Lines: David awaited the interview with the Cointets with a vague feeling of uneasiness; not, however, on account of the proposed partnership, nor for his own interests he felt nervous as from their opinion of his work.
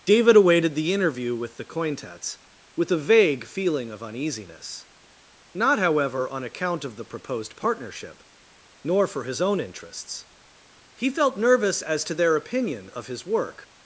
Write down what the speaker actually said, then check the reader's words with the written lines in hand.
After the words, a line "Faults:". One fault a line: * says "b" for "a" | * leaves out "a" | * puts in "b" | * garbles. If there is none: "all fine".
David awaited the interview with the Cointets with a vague feeling of uneasiness; not, however, on account of the proposed partnership, nor for his own interests he felt nervous as to their opinion of his work.
Faults:
* says "to" for "from"